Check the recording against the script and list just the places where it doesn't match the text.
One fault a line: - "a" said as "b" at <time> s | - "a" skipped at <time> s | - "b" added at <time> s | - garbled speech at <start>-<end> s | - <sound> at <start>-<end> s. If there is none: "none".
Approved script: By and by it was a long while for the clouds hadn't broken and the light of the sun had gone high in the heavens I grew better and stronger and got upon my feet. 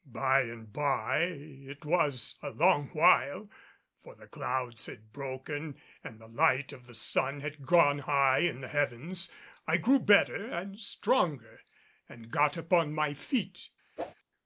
- "hadn't" said as "had" at 4.9 s
- whoosh at 14.0-14.1 s